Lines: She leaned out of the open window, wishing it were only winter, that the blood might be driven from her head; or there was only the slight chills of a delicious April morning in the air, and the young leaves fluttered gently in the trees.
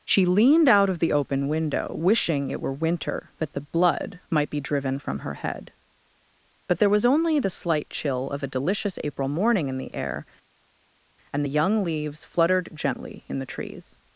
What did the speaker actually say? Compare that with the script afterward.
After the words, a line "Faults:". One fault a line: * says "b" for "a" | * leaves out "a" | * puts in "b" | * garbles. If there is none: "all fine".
She leaned out of the open window, wishing it were winter, that the blood might be driven from her head; but there was only the slight chill of a delicious April morning in the air, and the young leaves fluttered gently in the trees.
Faults:
* leaves out "only"
* says "but" for "or"
* says "chill" for "chills"